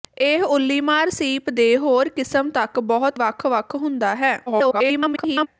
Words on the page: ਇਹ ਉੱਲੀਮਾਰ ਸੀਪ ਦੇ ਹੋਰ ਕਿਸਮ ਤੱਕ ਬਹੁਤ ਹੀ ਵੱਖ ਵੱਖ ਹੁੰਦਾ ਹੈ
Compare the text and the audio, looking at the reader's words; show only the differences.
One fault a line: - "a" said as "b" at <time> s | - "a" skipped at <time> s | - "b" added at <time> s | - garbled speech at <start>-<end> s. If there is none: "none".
- "ਹੀ" skipped at 3.2 s
- garbled speech at 4.5-5.5 s